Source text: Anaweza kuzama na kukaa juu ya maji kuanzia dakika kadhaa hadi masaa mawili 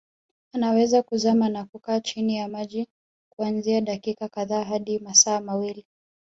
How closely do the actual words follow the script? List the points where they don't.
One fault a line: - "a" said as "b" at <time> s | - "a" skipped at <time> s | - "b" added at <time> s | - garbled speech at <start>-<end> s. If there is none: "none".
- "juu" said as "chini" at 2.0 s